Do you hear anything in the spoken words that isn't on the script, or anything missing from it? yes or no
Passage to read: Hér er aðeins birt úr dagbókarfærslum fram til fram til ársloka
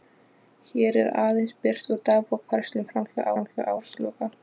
no